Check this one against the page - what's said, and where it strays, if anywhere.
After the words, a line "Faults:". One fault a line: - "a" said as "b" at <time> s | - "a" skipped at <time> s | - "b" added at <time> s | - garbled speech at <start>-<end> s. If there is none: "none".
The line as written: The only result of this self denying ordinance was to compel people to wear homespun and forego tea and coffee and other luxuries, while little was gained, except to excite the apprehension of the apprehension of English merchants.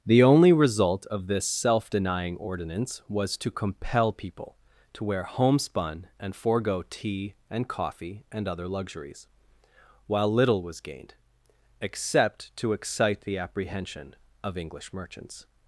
The only result of this self denying ordinance was to compel people to wear homespun and forego tea and coffee and other luxuries, while little was gained, except to excite the apprehension of English merchants.
Faults:
- "the apprehension of" skipped at 14.6 s